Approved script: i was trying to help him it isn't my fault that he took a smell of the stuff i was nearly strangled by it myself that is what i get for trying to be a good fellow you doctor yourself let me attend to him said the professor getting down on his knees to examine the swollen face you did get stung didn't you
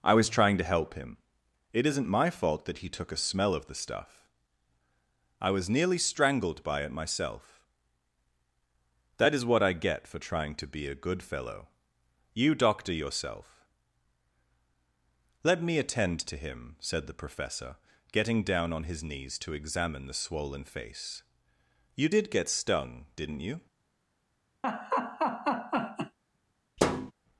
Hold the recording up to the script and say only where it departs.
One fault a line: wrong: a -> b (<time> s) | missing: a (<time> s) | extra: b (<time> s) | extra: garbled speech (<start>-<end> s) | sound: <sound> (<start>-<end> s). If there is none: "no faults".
sound: laugh (24.6-26.2 s)
sound: thud (26.8-27.1 s)